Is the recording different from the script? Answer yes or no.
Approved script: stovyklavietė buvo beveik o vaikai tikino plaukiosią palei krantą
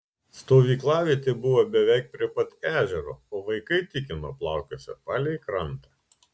yes